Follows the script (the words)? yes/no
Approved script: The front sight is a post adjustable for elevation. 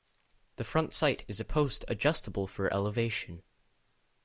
yes